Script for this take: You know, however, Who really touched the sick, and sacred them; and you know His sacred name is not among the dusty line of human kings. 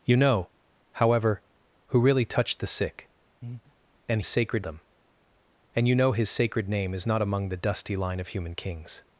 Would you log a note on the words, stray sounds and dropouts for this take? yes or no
yes